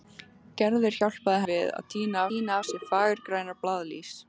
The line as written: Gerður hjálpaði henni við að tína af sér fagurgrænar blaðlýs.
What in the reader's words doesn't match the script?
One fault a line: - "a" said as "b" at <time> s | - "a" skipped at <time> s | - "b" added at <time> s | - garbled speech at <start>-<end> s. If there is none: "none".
- "henni" skipped at 1.4 s
- "tína" added at 2.3 s